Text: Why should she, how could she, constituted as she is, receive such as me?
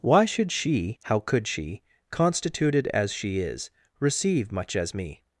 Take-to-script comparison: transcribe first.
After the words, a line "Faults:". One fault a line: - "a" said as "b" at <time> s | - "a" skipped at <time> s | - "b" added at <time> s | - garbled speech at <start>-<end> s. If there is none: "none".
Why should she, how could she, constituted as she is, receive much as me?
Faults:
- "such" said as "much" at 4.5 s